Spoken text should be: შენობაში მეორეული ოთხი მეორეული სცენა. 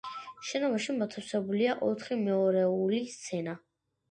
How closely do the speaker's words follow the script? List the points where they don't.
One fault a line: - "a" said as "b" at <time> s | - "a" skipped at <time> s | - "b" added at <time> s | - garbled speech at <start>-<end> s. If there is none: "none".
- "მეორეული" said as "მოთავსებულია" at 1.0 s